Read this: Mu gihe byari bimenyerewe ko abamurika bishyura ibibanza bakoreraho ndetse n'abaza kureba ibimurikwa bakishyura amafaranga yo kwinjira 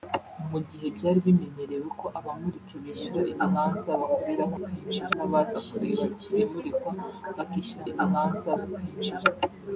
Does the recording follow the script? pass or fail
fail